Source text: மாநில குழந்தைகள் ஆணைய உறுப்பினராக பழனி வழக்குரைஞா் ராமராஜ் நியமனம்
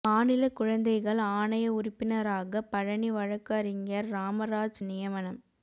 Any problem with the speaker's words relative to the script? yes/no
no